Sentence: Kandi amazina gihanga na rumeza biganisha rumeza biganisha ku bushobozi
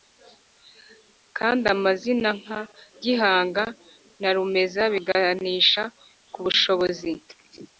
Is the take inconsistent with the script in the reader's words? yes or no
yes